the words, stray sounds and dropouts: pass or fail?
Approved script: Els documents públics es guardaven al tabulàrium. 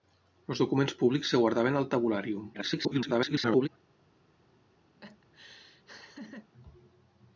fail